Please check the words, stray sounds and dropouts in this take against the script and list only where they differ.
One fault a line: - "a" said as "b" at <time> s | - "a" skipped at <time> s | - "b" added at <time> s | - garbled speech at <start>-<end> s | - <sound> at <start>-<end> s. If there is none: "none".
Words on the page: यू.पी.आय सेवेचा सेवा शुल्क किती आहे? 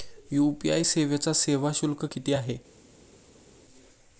none